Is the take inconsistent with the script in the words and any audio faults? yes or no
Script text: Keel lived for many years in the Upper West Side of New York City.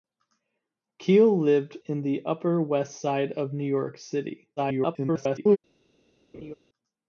yes